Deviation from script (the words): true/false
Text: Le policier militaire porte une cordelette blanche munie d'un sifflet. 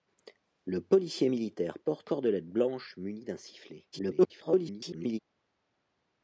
true